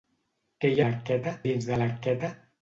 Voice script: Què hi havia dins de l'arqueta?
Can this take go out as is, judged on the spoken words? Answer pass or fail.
fail